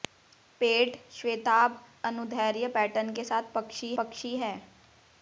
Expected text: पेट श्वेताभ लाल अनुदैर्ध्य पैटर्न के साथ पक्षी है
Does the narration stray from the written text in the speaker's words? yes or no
yes